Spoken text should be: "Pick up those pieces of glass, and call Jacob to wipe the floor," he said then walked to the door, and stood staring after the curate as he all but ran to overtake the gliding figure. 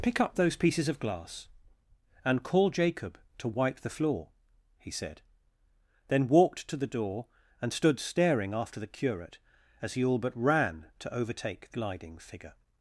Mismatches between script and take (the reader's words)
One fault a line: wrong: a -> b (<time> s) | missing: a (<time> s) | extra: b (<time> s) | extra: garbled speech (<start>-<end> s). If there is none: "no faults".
no faults